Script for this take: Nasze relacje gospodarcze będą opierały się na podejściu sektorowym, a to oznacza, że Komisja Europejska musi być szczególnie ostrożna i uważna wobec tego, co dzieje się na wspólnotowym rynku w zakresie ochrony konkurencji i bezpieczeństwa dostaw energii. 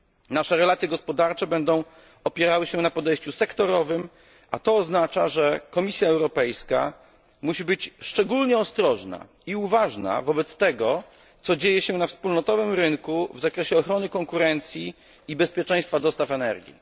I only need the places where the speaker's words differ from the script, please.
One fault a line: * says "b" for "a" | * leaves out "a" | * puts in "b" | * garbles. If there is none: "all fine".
all fine